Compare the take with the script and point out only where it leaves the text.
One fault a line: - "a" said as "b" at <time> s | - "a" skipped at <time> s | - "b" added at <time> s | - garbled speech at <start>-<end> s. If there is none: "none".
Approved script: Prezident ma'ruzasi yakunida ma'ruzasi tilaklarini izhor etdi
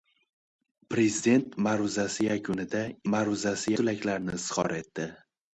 none